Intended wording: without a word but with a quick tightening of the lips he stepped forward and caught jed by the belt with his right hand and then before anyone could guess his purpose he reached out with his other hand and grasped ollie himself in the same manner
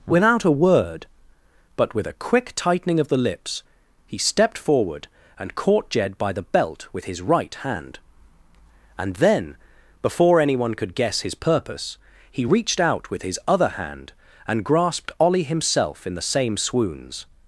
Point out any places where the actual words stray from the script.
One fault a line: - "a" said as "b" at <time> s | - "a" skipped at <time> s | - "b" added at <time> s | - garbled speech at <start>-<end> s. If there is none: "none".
- "manner" said as "swoons" at 16.5 s